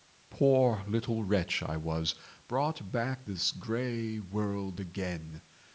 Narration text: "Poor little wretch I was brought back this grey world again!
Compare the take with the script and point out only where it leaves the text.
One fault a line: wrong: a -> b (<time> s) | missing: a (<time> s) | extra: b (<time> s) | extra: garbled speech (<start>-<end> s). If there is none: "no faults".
no faults